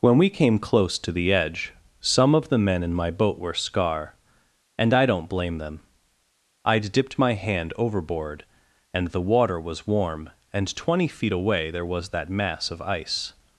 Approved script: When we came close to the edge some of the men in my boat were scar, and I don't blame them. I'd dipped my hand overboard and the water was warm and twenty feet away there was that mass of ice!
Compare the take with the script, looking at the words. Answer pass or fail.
pass